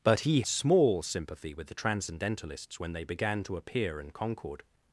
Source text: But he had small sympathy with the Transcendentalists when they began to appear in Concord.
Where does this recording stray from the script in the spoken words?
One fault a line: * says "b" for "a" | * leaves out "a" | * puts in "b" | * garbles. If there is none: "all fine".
* leaves out "had"